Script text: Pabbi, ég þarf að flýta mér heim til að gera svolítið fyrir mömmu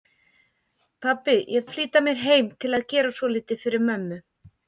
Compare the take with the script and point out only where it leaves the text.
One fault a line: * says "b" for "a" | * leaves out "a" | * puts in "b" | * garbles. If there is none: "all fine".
* leaves out "þarf"